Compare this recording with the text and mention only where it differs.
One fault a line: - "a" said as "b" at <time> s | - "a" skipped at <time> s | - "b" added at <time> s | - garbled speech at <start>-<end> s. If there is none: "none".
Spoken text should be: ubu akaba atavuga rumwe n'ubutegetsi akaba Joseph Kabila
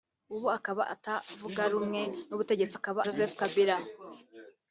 none